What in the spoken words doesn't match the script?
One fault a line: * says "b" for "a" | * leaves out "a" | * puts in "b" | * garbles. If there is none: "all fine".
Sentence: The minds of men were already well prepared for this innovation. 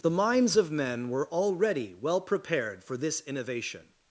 all fine